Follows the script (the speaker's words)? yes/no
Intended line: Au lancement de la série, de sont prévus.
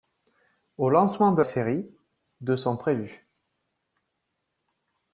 no